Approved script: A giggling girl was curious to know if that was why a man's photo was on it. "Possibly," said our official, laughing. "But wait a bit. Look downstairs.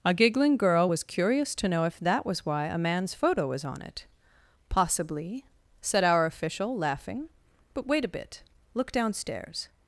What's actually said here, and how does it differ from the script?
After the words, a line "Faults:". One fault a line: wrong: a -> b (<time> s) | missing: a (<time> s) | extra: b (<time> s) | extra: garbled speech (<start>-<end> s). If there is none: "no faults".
A giggling girl was curious to know if that was why a man's photo was on it. "Possibly," said our official, laughing. "But wait a bit. Look downstairs.
Faults:
no faults